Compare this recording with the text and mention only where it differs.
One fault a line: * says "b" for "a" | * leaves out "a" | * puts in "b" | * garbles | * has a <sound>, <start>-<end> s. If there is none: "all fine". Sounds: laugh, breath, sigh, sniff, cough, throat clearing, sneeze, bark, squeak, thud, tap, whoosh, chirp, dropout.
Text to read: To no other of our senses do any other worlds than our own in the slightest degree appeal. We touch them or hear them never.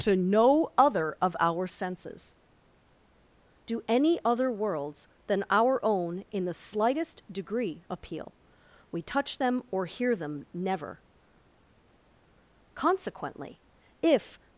* puts in "Consequently if"